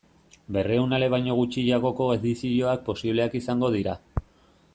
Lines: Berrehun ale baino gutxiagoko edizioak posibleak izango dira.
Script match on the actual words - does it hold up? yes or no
yes